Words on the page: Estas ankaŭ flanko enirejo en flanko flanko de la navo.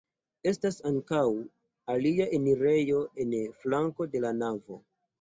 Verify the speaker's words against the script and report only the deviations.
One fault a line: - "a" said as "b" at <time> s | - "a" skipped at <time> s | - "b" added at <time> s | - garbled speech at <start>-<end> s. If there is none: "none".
- "flanko" said as "alia" at 2.0 s
- "flanko" skipped at 4.1 s